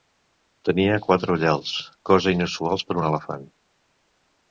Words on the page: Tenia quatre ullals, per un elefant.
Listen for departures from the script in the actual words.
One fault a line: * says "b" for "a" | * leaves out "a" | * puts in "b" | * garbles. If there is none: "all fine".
* puts in "cosa inusual"